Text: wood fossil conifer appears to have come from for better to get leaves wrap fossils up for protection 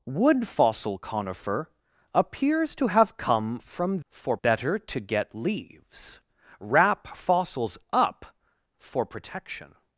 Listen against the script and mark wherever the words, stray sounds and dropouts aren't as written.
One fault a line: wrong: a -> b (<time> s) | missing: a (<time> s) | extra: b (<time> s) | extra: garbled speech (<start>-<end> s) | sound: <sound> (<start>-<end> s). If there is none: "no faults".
no faults